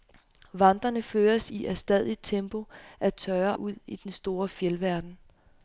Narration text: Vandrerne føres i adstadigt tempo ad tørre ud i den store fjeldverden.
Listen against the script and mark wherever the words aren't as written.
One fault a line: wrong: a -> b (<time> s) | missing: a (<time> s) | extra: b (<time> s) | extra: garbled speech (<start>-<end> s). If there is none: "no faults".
no faults